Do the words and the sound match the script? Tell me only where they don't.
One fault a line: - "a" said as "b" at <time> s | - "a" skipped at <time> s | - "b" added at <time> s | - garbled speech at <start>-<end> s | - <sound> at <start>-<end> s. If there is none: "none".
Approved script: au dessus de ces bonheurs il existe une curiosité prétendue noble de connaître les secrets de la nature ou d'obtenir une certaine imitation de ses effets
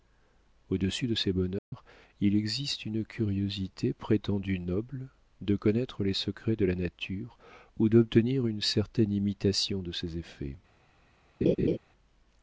- dropout at 1.6-1.7 s
- laugh at 11.4-11.8 s